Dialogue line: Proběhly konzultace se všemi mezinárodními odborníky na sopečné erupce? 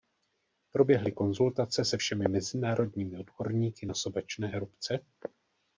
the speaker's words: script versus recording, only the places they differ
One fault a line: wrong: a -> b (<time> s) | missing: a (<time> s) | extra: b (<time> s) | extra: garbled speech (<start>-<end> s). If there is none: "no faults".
no faults